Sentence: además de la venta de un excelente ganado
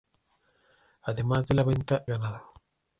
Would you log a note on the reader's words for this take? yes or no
yes